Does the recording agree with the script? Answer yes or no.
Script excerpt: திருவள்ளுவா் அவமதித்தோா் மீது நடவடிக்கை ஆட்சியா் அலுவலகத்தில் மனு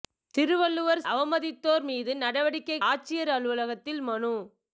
yes